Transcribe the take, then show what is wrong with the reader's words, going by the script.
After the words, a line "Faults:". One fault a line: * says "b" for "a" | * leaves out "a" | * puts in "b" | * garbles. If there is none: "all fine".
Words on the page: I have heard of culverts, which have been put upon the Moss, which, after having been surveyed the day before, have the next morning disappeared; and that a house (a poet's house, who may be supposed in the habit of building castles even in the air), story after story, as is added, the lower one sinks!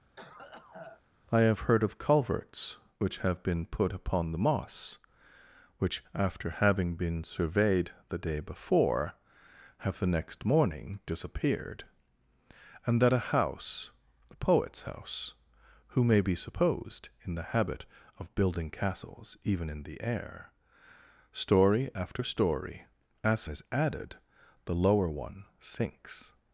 I have heard of culverts, which have been put upon the Moss, which, after having been surveyed the day before, have the next morning disappeared; and that a house (a poet's house, who may be supposed in the habit of building castles even in the air), story after story, as is added, the lower one sinks!
Faults:
all fine